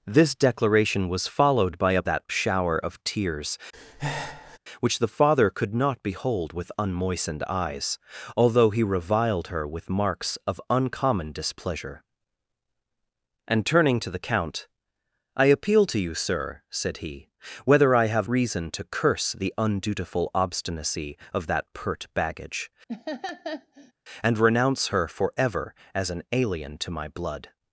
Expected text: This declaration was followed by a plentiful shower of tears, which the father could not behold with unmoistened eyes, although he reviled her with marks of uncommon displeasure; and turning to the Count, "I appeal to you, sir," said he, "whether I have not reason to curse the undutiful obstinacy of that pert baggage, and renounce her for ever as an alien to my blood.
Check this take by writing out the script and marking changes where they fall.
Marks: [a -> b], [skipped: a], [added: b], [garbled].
This declaration was followed by a [plentiful -> that] shower of tears, which the father could not behold with unmoistened eyes, although he reviled her with marks of uncommon displeasure; and turning to the Count, "I appeal to you, sir," said he, "whether I have [skipped: not] reason to curse the undutiful obstinacy of that pert baggage, and renounce her for ever as an alien to my blood.